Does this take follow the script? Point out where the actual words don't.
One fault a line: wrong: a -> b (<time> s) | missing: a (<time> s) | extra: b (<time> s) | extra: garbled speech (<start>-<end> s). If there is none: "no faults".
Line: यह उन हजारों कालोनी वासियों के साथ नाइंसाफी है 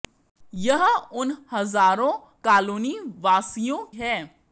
missing: के साथ नाइंसाफी (3.8 s)